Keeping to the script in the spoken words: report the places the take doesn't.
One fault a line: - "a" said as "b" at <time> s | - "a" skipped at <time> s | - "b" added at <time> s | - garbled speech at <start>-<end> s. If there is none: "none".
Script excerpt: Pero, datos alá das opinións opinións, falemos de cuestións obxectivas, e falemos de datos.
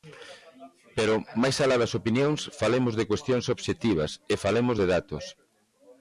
- "datos" said as "máis" at 1.4 s
- "opinións" skipped at 2.4 s